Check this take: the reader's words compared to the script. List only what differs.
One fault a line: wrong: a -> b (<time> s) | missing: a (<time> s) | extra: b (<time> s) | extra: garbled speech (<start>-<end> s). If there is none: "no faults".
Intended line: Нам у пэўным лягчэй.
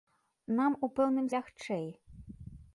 no faults